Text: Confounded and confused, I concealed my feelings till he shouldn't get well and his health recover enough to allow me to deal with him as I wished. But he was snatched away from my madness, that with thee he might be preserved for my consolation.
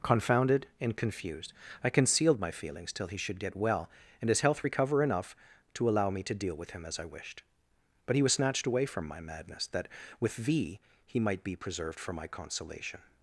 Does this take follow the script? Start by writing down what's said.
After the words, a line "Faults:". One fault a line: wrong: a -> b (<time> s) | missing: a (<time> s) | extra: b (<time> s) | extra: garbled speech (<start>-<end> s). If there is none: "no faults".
Confounded and confused, I concealed my feelings till he should get well and his health recover enough to allow me to deal with him as I wished. But he was snatched away from my madness, that with thee he might be preserved for my consolation.
Faults:
wrong: shouldn't -> should (3.2 s)